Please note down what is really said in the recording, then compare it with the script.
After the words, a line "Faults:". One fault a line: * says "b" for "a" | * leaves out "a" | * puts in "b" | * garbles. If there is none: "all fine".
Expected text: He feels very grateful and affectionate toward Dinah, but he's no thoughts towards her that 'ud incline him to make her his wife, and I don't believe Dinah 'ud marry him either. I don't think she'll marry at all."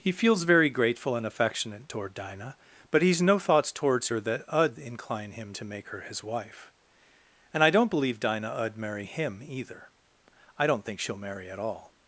He feels very grateful and affectionate toward Dinah, but he's no thoughts towards her that 'ud incline him to make her his wife, and I don't believe Dinah 'ud marry him either. I don't think she'll marry at all."
Faults:
all fine